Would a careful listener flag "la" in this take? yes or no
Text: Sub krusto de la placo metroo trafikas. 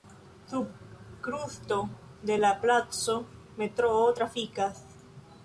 no